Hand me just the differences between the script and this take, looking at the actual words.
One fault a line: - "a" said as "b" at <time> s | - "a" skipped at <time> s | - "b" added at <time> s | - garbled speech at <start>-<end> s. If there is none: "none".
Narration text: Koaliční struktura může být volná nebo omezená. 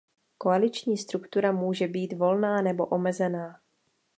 none